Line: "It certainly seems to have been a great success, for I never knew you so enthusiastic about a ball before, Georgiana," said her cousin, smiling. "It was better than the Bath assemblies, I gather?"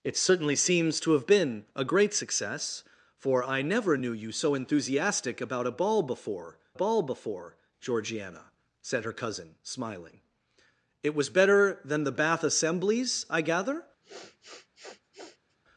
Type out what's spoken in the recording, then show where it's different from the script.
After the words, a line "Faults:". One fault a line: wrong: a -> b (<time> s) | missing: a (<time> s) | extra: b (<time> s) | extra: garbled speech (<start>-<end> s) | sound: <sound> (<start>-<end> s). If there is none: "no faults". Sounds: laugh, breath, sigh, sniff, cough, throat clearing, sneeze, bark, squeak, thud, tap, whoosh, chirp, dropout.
"It certainly seems to have been a great success, for I never knew you so enthusiastic about a ball before ball before, Georgiana," said her cousin, smiling. "It was better than the Bath assemblies, I gather?"
Faults:
extra: ball before (6.7 s)
sound: sniff (14.0-15.6 s)